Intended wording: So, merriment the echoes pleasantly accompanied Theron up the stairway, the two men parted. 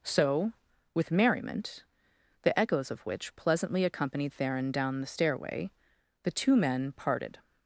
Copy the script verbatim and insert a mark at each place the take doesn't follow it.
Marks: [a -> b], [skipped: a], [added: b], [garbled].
So, [added: with] merriment the echoes [added: of which] pleasantly accompanied Theron [up -> down] the stairway, the two men parted.